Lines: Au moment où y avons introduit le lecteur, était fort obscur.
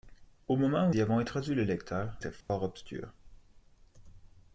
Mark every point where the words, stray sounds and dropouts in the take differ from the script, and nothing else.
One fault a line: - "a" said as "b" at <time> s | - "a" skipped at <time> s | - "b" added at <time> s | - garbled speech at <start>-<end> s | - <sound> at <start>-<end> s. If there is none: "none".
- dropout at 2.4-2.5 s